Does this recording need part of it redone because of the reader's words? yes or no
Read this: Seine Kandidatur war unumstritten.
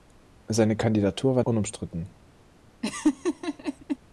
no